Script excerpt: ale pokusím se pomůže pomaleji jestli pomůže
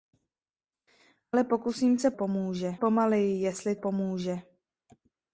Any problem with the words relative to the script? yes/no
no